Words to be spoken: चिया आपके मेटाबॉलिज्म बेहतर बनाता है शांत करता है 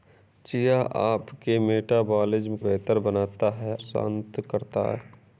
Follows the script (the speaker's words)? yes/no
yes